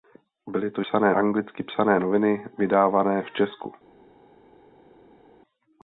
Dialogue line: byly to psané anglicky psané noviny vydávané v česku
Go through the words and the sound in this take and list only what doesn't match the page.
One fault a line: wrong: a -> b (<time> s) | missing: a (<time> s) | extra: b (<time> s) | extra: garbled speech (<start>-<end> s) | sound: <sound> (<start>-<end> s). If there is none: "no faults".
no faults